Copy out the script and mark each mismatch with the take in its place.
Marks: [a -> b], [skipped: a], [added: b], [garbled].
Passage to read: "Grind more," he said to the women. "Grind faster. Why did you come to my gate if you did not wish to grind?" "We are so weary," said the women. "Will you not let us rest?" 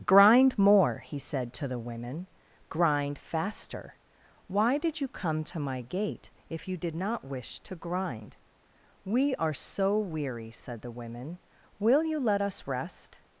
"Grind more," he said to the women. "Grind faster. Why did you come to my gate if you did not wish to grind?" "We are so weary," said the women. "Will you [skipped: not] let us rest?"